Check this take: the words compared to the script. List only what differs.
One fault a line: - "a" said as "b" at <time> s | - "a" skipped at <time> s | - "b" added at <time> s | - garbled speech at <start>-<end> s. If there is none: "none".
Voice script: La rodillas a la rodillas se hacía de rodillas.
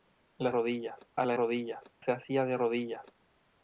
none